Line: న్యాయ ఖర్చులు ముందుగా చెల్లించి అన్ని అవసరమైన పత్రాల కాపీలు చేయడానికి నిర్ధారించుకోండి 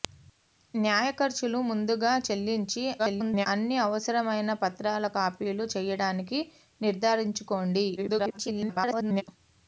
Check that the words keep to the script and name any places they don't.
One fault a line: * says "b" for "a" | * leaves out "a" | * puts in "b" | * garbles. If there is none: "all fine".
* garbles
* garbles